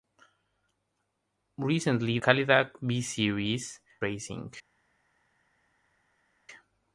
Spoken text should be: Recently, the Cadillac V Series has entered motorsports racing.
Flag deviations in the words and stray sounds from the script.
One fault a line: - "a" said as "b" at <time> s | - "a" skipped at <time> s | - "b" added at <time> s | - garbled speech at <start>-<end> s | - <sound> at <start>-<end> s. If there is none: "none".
- "the" skipped at 2.2 s
- "has entered motorsports" skipped at 3.8 s